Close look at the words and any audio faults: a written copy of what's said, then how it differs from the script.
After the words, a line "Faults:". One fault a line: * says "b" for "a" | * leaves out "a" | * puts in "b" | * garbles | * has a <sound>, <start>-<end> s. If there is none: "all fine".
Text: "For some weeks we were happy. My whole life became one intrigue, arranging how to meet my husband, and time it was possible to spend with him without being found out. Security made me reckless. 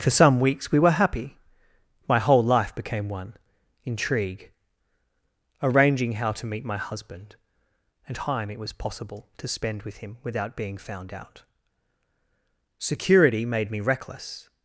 "For some weeks we were happy. My whole life became one intrigue, arranging how to meet my husband, and time it was possible to spend with him without being found out. Security made me reckless.
Faults:
all fine